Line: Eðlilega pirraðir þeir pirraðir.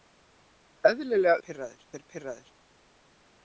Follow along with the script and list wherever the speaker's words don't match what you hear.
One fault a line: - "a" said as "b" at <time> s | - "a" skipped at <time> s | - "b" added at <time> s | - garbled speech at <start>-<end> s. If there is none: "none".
none